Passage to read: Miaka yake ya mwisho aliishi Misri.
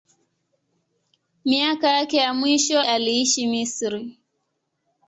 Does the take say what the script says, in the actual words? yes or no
yes